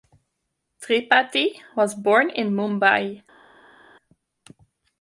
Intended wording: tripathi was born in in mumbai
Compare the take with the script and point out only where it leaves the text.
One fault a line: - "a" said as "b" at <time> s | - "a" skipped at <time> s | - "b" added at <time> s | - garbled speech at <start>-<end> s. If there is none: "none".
- "in" skipped at 2.5 s